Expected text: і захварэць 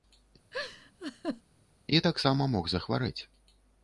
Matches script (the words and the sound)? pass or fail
fail